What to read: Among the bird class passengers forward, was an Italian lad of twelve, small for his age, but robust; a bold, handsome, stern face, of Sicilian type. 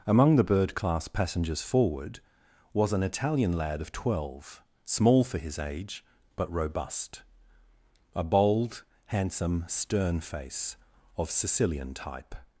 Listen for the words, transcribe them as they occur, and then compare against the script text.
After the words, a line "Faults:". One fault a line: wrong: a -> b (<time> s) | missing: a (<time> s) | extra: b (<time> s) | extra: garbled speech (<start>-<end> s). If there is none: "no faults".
Among the bird class passengers forward, was an Italian lad of twelve, small for his age, but robust; a bold, handsome, stern face, of Sicilian type.
Faults:
no faults